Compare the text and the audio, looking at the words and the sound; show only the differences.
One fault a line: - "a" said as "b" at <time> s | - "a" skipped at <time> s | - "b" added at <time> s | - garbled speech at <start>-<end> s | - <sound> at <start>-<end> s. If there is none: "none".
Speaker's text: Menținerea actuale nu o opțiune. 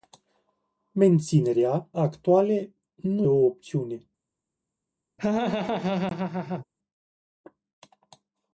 - laugh at 5.2-6.7 s